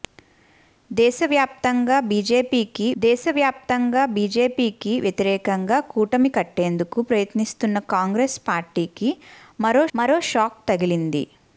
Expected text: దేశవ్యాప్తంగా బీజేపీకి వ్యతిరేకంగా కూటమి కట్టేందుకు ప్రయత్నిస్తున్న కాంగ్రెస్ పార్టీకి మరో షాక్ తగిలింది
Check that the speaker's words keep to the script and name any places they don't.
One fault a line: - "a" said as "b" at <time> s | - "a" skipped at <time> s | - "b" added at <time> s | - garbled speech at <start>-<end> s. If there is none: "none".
- "దేశవ్యాప్తంగా బీజేపీకి" added at 3.0 s
- "మరో" added at 10.0 s